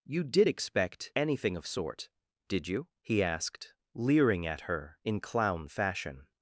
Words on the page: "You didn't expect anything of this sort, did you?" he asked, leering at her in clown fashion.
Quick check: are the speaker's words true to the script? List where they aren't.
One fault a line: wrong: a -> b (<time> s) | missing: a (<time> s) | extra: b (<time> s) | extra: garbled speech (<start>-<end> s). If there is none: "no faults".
wrong: didn't -> did (0.2 s)
missing: this (1.7 s)